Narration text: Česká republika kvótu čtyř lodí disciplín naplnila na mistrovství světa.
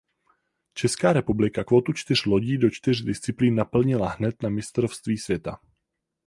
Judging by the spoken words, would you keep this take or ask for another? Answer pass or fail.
fail